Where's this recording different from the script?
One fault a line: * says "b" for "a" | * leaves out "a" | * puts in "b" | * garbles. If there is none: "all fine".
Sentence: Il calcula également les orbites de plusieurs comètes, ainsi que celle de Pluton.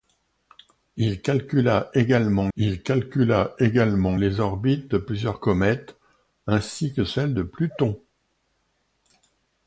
* puts in "il calcula également"